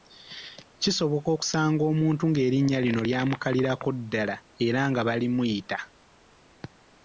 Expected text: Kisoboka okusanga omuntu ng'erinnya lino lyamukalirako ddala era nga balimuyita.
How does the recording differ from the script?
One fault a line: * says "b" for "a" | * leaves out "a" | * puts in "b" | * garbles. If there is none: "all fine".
all fine